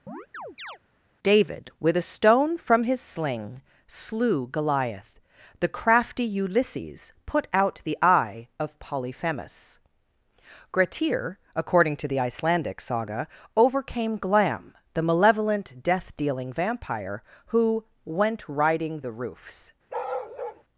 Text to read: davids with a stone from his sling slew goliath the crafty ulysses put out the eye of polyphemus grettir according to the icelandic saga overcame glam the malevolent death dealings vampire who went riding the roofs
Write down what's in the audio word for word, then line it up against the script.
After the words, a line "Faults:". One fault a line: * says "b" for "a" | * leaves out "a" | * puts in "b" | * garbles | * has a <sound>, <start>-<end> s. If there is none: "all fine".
david with a stone from his sling slew goliath the crafty ulysses put out the eye of polyphemus grettir according to the icelandic saga overcame glam the malevolent death dealing vampire who went riding the roofs
Faults:
* has a chirp, 0.1-0.8 s
* says "david" for "davids"
* says "dealing" for "dealings"
* has a bark, 19.9-20.6 s